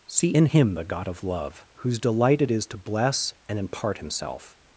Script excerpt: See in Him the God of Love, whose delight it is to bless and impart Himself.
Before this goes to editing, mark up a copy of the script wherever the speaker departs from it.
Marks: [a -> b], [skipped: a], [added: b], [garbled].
See in Him the God of Love, whose delight it is to bless and impart Himself.